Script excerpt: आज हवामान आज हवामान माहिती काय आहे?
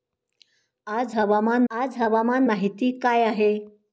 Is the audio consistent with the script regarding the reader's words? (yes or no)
yes